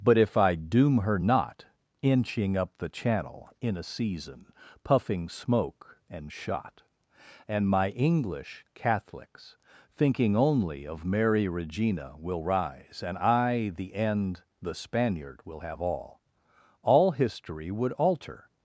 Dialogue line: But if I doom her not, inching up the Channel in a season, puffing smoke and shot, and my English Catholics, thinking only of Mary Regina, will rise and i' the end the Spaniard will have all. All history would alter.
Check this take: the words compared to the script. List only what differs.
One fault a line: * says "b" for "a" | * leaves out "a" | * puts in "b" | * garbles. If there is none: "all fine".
all fine